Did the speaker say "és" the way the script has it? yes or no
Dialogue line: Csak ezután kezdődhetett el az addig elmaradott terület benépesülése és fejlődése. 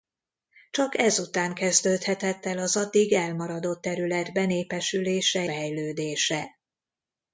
no